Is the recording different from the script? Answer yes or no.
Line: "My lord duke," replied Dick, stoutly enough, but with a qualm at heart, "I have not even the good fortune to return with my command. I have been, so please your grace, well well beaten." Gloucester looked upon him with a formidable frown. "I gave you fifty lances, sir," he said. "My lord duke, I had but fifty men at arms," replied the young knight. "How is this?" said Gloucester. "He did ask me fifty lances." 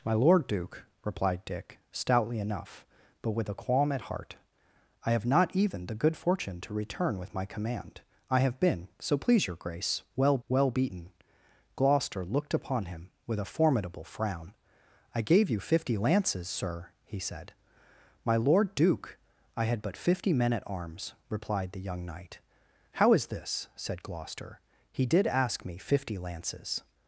no